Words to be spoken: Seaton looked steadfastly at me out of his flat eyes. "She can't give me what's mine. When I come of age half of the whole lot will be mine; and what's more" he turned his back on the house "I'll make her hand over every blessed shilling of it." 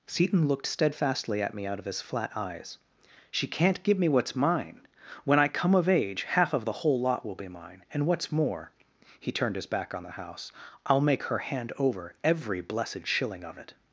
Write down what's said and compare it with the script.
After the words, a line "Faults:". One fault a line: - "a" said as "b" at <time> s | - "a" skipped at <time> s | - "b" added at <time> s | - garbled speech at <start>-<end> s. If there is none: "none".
Seaton looked steadfastly at me out of his flat eyes. "She can't give me what's mine. When I come of age half of the whole lot will be mine; and what's more" he turned his back on the house "I'll make her hand over every blessed shilling of it."
Faults:
none